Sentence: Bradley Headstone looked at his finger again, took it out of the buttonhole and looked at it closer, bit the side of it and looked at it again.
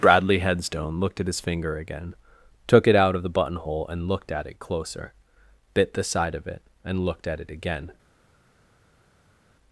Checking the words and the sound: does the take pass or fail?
pass